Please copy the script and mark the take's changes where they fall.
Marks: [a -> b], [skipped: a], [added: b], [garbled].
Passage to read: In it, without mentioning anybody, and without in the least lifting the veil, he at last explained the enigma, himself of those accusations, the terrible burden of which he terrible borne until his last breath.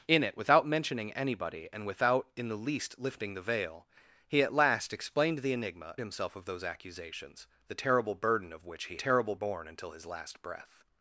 In it, without mentioning anybody, and without in the least lifting the veil, he at last explained the enigma, himself of those accusations, the terrible burden of which he terrible borne until his last breath.